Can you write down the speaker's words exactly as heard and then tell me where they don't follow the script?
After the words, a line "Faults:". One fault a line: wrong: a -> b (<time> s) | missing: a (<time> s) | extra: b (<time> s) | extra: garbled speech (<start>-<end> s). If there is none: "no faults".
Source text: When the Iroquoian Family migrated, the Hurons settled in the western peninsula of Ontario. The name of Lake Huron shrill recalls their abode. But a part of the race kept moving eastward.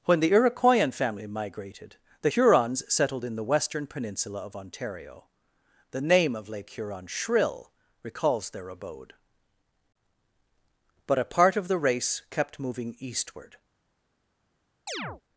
When the Iroquoian Family migrated, the Hurons settled in the western peninsula of Ontario. The name of Lake Huron shrill recalls their abode. But a part of the race kept moving eastward.
Faults:
no faults